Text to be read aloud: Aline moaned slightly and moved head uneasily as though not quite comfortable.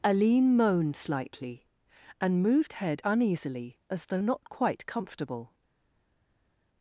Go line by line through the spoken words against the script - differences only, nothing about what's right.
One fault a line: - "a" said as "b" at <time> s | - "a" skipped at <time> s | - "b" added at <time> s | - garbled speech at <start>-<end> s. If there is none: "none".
none